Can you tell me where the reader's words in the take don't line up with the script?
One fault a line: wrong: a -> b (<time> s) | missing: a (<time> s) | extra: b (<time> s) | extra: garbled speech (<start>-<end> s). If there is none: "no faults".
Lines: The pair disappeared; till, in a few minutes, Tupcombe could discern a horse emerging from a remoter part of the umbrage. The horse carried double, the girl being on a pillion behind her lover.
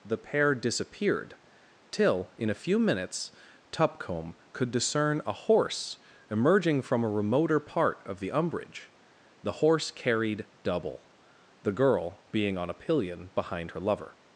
no faults